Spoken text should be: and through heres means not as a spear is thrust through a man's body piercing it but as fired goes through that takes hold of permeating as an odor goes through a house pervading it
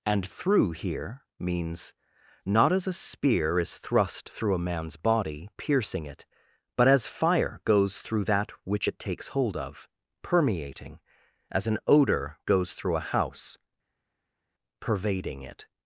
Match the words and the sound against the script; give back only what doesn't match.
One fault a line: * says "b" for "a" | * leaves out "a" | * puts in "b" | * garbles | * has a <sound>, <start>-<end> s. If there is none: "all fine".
* says "here" for "heres"
* says "fire" for "fired"
* puts in "which it"